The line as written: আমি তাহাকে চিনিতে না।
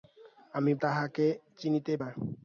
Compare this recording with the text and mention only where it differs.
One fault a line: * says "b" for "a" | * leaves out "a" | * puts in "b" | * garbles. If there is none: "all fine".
all fine